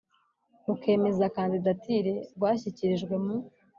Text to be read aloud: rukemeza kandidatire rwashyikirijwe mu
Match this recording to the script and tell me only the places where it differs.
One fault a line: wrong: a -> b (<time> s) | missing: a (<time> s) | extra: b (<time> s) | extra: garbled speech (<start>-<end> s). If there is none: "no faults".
no faults